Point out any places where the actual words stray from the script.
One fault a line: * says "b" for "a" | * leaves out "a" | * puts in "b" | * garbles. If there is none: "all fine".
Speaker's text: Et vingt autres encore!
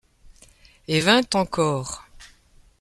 * leaves out "autres"